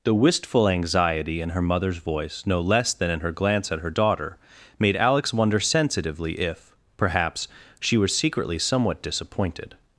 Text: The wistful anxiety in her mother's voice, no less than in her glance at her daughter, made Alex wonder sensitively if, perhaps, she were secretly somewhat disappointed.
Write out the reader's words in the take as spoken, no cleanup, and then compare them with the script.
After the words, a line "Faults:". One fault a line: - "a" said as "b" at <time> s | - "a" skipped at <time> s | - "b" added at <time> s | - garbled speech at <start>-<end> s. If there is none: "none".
The wistful anxiety in her mother's voice, no less than in her glance at her daughter, made Alex wonder sensitively if, perhaps, she were secretly somewhat disappointed.
Faults:
none